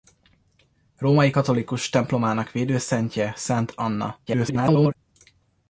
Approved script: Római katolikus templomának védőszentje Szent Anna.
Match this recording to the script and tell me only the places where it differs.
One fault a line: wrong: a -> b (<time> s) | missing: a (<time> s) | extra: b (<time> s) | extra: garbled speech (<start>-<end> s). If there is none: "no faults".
extra: garbled speech (4.3-5.0 s)